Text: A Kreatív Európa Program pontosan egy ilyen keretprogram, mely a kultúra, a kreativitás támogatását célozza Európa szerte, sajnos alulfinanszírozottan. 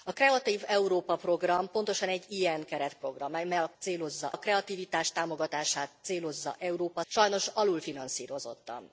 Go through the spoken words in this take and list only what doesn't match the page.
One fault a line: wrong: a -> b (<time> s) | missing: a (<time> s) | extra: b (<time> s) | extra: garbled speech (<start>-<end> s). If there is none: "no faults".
wrong: kultúra -> célozza (3.8 s)
missing: szerte (7.0 s)